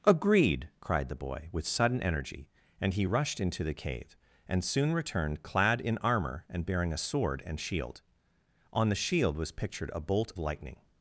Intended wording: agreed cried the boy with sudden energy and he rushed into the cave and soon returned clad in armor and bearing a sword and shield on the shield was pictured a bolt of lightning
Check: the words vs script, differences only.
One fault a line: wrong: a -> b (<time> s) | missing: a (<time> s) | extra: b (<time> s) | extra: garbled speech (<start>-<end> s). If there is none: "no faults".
missing: of (10.3 s)